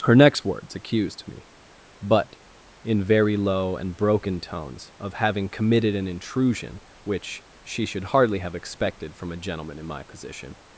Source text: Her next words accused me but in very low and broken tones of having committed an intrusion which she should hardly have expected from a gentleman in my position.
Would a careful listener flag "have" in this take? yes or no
no